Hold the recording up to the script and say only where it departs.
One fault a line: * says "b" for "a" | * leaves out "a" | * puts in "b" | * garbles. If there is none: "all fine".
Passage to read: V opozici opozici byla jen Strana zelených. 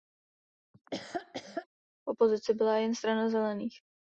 * leaves out "opozici"